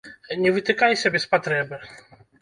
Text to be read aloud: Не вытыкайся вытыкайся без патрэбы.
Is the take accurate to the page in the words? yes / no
no